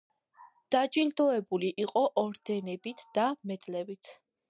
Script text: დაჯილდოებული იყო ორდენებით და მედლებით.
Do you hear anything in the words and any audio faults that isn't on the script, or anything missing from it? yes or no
no